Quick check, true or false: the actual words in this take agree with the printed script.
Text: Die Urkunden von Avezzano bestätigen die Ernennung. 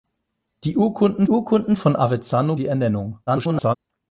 false